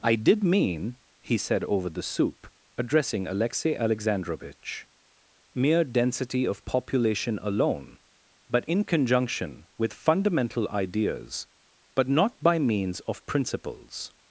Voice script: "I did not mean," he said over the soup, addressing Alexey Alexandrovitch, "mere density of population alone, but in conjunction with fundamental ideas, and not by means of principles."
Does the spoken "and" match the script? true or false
false